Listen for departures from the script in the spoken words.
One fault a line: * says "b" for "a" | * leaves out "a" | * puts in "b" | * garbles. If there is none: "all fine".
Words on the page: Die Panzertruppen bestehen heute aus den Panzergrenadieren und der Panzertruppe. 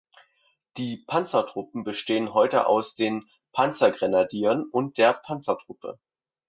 all fine